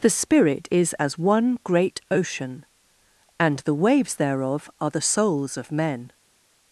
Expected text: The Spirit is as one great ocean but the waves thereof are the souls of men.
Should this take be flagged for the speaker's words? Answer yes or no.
yes